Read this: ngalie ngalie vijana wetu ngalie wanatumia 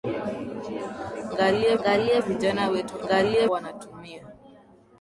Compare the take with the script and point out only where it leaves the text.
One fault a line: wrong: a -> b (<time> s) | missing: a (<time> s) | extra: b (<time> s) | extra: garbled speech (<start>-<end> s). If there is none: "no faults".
no faults